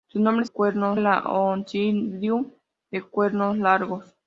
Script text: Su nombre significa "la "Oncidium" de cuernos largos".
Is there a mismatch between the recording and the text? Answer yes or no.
yes